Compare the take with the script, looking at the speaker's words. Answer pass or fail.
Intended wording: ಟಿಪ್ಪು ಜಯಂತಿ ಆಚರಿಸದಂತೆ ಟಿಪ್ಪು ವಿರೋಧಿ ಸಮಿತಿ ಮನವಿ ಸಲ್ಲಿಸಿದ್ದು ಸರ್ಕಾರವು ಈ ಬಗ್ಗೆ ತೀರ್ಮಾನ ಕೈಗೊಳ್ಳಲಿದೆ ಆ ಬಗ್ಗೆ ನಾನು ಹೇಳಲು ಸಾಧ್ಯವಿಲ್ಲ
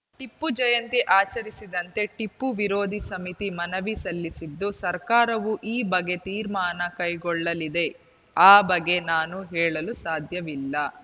pass